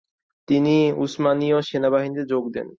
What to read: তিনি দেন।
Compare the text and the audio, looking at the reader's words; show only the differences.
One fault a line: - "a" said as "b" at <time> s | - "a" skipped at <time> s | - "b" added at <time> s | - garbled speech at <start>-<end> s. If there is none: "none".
- "উসমানীয় সেনাবাহিনীতে যোগ" added at 1.0 s